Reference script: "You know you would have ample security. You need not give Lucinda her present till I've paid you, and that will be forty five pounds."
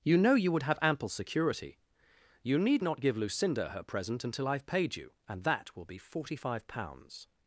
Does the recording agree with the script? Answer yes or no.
no